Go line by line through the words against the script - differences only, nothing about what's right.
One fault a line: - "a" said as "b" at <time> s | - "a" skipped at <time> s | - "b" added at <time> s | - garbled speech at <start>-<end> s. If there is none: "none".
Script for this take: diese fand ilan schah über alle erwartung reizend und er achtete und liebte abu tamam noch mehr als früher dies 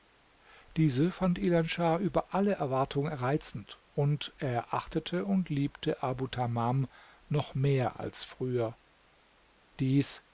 none